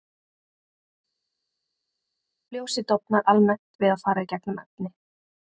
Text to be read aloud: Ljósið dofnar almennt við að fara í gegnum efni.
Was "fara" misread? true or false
false